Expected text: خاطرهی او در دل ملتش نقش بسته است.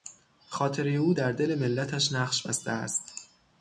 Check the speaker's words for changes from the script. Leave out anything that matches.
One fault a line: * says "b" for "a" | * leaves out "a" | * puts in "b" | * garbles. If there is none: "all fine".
all fine